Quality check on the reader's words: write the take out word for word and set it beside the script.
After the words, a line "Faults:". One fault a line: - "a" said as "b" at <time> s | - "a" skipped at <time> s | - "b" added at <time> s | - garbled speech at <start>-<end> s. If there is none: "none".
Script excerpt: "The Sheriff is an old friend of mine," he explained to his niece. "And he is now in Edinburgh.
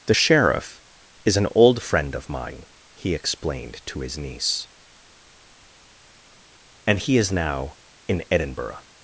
"The Sheriff is an old friend of mine," he explained to his niece. "And he is now in Edinburgh.
Faults:
none